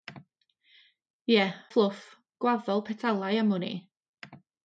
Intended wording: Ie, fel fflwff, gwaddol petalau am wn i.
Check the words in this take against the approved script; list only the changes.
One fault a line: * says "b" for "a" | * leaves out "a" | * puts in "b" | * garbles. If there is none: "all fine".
* leaves out "fel"